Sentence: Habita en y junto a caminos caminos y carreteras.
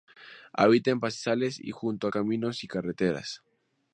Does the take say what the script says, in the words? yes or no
no